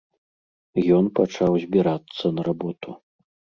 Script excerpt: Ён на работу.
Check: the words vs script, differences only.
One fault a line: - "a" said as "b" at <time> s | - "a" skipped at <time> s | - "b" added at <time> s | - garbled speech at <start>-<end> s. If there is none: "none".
- "пачаў збірацца" added at 1.2 s